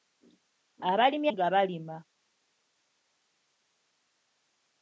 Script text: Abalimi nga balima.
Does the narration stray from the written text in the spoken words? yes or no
no